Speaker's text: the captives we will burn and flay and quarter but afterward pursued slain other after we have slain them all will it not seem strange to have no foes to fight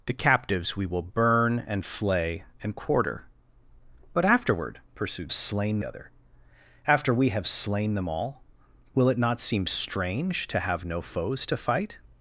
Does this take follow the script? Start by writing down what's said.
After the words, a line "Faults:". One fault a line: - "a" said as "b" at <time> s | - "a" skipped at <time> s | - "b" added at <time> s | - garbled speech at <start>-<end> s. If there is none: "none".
the captives we will burn and flay and quarter but afterward pursued slain other after we have slain them all will it not seem strange to have no foes to fight
Faults:
none